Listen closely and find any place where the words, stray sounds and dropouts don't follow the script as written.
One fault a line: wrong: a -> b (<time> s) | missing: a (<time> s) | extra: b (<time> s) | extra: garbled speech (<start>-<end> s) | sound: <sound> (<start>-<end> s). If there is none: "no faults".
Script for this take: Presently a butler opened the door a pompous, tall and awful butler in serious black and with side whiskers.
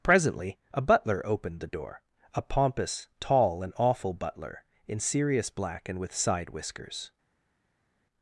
no faults